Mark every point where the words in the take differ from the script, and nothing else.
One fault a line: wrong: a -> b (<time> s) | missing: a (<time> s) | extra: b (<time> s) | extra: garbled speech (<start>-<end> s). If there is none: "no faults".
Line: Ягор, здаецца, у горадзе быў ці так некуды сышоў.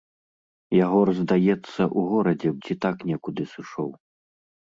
missing: быў (2.5 s)